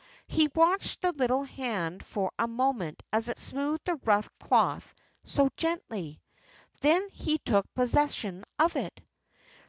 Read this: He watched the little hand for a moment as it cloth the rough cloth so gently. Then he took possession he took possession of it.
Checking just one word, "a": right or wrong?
right